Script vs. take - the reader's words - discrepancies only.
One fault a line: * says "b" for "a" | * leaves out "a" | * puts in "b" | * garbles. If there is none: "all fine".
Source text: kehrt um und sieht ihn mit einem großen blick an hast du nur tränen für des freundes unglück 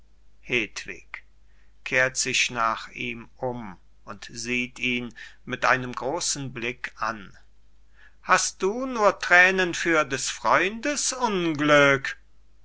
* puts in "sich nach ihm"